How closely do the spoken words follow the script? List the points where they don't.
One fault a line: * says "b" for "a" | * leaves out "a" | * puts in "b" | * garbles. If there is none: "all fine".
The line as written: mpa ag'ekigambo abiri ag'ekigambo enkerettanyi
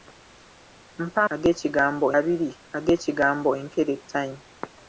all fine